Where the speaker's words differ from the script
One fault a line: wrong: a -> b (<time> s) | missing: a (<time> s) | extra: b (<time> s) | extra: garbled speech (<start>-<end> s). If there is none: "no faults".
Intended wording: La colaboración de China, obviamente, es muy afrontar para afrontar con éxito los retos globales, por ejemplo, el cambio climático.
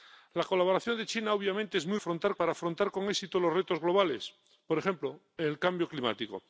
no faults